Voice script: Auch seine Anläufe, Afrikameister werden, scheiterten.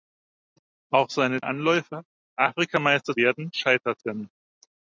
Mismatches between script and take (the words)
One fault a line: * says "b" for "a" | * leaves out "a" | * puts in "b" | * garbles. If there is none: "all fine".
all fine